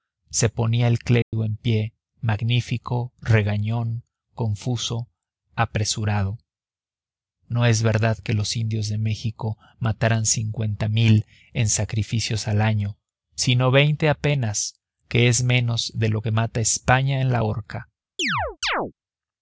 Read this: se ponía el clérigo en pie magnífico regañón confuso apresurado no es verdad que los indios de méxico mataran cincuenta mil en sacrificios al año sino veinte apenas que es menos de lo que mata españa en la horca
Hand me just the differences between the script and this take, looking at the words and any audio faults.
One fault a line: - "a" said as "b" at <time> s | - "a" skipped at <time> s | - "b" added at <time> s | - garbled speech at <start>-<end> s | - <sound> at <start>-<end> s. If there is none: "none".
- dropout at 1.2-1.3 s
- chirp at 18.2-18.9 s